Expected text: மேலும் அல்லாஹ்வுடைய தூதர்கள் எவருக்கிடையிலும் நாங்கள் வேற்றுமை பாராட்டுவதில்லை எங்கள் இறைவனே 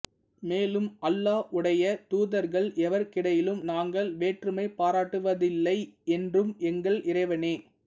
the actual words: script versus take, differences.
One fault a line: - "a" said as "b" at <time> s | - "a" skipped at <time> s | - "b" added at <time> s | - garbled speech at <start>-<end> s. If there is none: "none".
- "என்றும்" added at 6.2 s